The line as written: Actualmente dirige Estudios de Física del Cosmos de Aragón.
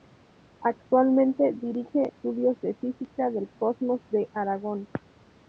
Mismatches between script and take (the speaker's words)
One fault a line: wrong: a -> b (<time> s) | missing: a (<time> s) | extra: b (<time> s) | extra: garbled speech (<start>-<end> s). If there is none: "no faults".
no faults